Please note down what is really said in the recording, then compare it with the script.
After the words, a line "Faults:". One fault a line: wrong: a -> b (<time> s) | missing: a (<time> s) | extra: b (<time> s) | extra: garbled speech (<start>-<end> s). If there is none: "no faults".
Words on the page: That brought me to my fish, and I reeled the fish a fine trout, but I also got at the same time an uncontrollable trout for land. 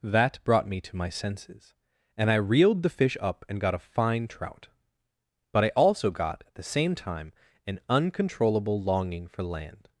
That brought me to my senses, and I reeled the fish up and got a fine trout, but I also got at the same time an uncontrollable longing for land.
Faults:
wrong: fish -> senses (1.1 s)
extra: up and got (3.2 s)
wrong: trout -> longing (8.8 s)